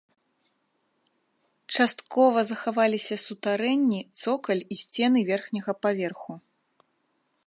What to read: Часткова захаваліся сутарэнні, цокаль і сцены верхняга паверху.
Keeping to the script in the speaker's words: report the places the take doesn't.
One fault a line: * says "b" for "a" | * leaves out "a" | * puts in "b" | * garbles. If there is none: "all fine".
all fine